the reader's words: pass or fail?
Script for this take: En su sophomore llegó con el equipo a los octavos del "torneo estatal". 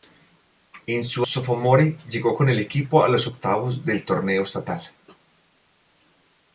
pass